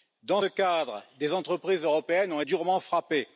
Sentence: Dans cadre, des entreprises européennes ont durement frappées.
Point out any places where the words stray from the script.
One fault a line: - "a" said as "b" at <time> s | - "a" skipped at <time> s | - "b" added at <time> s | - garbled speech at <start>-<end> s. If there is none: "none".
none